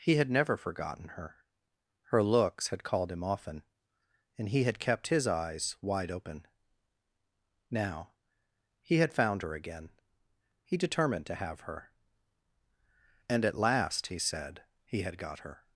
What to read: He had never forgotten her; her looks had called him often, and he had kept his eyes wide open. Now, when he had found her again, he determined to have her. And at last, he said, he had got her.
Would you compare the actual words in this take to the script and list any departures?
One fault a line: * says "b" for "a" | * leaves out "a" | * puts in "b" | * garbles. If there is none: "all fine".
* leaves out "when"